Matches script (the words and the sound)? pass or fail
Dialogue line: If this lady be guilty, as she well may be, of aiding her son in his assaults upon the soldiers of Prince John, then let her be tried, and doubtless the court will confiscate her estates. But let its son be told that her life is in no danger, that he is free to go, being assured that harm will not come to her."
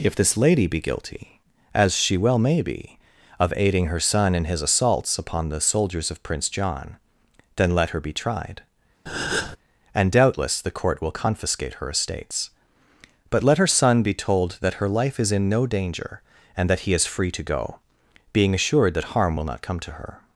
fail